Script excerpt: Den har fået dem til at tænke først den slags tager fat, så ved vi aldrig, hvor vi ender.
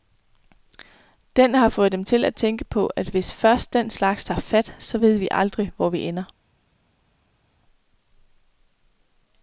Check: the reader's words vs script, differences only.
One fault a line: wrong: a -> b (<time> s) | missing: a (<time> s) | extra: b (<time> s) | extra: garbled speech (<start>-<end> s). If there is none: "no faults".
extra: på at hvis (2.7 s)